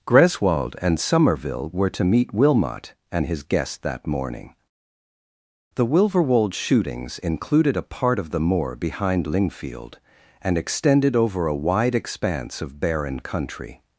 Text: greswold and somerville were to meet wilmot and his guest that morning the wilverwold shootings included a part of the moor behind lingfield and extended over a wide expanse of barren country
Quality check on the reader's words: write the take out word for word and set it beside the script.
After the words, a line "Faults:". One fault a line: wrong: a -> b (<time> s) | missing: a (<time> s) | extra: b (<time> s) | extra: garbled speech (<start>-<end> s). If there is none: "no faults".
greswold and somerville were to meet wilmot and his guest that morning the wilverwold shootings included a part of the moor behind lingfield and extended over a wide expanse of barren country
Faults:
no faults